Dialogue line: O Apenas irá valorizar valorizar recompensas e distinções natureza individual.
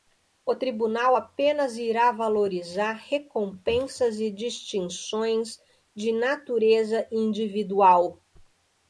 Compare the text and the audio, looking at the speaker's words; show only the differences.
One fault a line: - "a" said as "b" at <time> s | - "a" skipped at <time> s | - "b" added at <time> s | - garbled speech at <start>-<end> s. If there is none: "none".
- "Tribunal" added at 0.6 s
- "valorizar" skipped at 2.9 s
- "de" added at 5.9 s